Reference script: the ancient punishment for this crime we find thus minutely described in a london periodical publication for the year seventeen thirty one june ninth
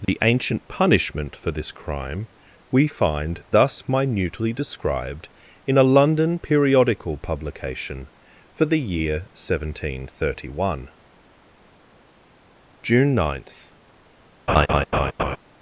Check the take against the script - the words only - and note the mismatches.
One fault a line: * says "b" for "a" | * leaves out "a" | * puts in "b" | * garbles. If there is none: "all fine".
all fine